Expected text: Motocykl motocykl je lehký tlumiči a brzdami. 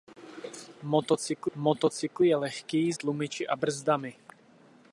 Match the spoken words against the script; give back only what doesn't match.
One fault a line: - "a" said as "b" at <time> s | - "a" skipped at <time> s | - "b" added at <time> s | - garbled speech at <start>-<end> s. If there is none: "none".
none